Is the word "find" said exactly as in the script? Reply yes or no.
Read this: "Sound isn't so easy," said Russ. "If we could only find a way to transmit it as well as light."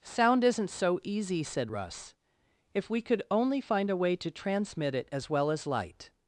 yes